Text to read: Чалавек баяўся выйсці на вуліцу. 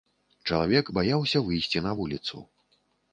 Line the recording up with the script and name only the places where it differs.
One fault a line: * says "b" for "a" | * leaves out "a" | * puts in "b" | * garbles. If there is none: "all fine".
all fine